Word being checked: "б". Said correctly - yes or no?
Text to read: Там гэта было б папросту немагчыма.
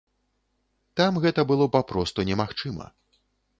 no